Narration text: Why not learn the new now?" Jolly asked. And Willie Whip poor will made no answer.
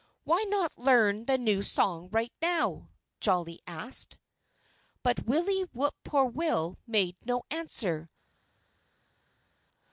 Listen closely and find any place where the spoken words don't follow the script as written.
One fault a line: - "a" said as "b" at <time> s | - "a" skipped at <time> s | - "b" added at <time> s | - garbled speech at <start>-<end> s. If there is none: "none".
- "song right" added at 1.6 s
- "And" said as "But" at 5.0 s